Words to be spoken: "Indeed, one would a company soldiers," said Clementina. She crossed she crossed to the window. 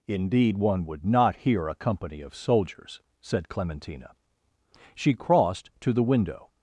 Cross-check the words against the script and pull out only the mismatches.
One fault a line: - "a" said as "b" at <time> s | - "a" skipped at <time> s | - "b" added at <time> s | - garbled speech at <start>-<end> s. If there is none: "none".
- "not hear" added at 1.1 s
- "of" added at 2.2 s
- "she crossed" skipped at 5.7 s